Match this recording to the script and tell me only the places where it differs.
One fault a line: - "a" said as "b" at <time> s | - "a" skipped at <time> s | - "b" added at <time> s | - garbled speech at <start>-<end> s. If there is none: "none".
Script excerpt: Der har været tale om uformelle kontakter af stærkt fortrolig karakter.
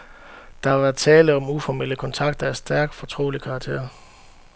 none